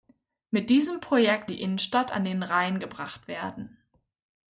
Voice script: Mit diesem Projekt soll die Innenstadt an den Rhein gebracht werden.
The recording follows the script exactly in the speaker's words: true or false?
false